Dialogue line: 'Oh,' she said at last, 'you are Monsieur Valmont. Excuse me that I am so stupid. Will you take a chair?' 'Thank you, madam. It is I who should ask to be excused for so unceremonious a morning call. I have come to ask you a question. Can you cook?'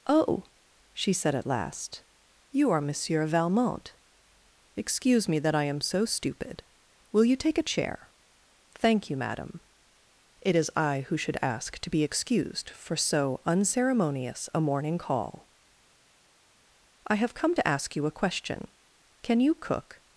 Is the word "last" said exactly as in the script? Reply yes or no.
yes